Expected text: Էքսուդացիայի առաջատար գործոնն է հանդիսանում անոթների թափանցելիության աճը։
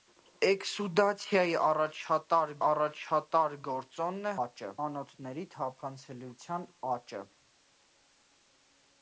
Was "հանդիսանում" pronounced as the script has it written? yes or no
no